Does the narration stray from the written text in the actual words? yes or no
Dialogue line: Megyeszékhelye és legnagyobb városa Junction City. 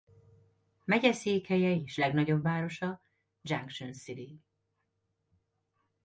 no